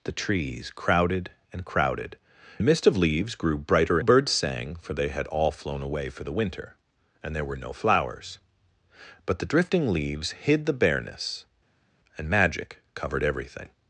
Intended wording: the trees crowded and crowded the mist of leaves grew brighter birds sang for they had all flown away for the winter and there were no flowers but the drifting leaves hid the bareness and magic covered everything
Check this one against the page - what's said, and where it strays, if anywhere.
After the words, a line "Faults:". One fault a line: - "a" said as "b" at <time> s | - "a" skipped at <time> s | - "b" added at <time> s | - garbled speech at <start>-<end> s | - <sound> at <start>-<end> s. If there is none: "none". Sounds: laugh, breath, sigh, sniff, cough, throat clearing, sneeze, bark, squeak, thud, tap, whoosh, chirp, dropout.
the trees crowded and crowded the mist of leaves grew brighter birds sang for they had all flown away for the winter and there were no flowers but the drifting leaves hid the bareness and magic covered everything
Faults:
none